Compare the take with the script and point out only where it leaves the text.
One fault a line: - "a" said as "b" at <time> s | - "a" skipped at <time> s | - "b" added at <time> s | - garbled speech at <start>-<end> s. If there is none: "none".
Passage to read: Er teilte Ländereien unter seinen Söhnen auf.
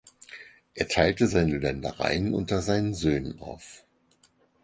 - "seine" added at 1.3 s